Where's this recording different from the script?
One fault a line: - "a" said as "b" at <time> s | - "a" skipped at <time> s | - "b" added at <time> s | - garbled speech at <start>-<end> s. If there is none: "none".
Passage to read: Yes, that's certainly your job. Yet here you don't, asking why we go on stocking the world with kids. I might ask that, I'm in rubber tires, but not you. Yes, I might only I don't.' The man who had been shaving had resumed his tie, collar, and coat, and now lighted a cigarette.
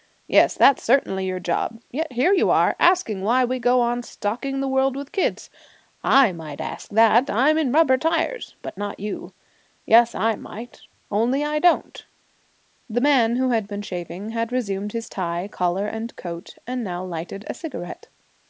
- "don't" said as "are" at 2.5 s